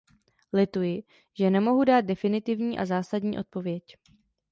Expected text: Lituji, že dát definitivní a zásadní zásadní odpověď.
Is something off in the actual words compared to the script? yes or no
yes